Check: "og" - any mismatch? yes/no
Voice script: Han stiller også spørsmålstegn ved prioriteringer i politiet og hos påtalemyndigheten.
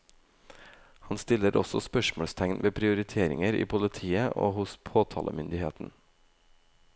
no